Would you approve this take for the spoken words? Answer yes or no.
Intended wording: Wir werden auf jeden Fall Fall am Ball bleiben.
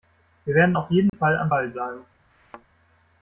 no